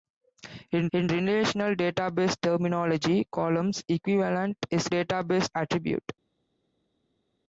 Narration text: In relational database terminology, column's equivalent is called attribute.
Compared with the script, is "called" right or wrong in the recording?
wrong